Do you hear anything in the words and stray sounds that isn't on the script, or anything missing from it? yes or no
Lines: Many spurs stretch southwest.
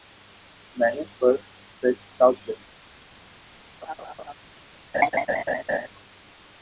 yes